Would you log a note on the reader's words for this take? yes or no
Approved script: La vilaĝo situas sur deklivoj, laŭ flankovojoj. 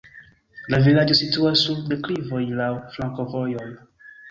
no